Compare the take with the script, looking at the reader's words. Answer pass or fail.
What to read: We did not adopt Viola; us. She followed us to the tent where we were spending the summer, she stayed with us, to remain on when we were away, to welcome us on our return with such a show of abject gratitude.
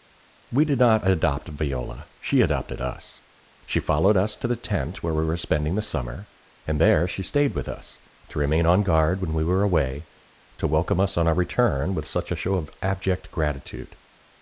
fail